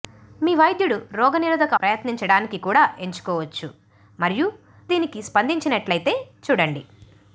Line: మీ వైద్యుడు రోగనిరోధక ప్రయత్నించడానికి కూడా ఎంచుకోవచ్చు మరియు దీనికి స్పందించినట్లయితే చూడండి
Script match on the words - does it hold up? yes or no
yes